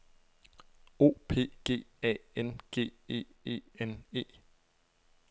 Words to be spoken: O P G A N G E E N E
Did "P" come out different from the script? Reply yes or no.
no